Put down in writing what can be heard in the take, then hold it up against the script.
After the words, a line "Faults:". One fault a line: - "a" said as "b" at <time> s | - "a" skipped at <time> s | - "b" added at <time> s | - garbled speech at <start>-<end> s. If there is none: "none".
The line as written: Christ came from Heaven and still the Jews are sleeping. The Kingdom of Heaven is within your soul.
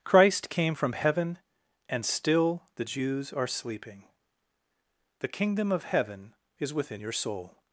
Christ came from Heaven and still the Jews are sleeping. The Kingdom of Heaven is within your soul.
Faults:
none